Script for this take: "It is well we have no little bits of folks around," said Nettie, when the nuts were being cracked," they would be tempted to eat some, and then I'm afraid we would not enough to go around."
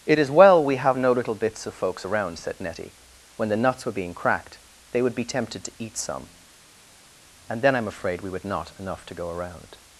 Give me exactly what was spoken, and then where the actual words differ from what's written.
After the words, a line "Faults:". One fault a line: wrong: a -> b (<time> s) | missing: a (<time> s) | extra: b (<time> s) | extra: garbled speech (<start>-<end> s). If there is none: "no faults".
"It is well we have no little bits of folks around," said Nettie, when the nuts were being cracked," they would be tempted to eat some, and then I'm afraid we would not enough to go around."
Faults:
no faults